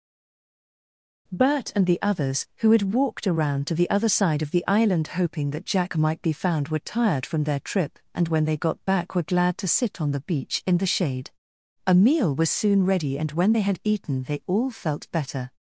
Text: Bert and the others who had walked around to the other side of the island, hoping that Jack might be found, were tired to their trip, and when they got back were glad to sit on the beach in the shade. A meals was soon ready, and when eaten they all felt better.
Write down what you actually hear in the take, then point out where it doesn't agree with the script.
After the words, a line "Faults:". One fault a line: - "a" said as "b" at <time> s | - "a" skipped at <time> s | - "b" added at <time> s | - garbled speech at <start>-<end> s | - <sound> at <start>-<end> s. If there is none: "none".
Bert and the others who had walked around to the other side of the island, hoping that Jack might be found, were tired from their trip, and when they got back were glad to sit on the beach in the shade. A meal was soon ready, and when they had eaten they all felt better.
Faults:
- "to" said as "from" at 7.3 s
- "meals" said as "meal" at 11.9 s
- "they had" added at 13.5 s